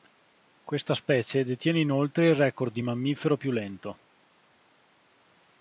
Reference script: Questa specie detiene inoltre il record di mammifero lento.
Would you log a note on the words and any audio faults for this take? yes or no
yes